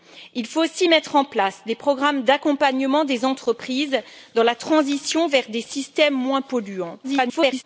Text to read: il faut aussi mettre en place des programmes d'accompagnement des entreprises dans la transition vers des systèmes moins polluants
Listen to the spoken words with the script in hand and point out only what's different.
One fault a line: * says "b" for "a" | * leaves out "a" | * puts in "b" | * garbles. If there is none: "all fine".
* garbles